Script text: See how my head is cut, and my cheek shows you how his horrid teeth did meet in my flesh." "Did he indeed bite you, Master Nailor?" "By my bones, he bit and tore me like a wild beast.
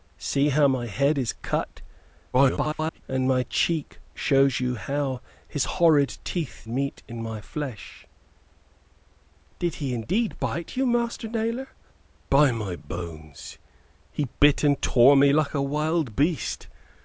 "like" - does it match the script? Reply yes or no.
yes